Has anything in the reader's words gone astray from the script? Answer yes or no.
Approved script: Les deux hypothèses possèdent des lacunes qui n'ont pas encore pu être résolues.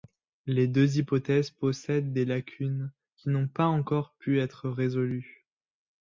no